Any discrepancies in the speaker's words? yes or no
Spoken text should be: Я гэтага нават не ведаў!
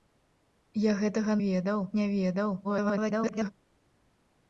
yes